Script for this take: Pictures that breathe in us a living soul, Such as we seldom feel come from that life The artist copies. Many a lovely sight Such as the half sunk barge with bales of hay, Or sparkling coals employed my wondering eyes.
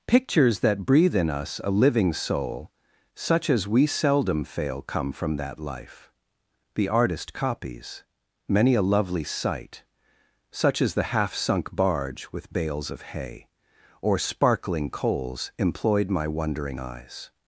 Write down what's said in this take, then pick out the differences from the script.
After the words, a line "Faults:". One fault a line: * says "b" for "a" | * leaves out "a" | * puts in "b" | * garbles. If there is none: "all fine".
Pictures that breathe in us a living soul, Such as we seldom fail come from that life The artist copies. Many a lovely sight Such as the half sunk barge with bales of hay, Or sparkling coals employed my wondering eyes.
Faults:
* says "fail" for "feel"